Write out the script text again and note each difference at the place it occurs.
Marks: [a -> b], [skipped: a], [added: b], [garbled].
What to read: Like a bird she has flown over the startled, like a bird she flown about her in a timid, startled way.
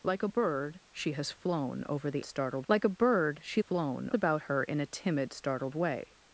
Like a bird she has flown over the startled, like a bird she flown about her in a timid, startled way.